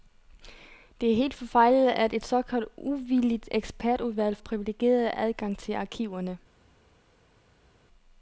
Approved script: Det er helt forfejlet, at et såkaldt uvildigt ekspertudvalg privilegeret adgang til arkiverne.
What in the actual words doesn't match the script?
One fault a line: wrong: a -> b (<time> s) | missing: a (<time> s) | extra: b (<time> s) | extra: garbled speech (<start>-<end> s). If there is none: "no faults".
no faults